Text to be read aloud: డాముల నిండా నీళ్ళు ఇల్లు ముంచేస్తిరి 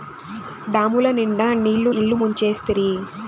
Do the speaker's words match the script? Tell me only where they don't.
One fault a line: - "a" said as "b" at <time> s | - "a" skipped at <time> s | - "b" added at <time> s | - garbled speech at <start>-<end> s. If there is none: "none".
none